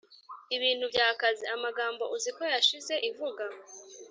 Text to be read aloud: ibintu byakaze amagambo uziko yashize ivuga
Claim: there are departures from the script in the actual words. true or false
false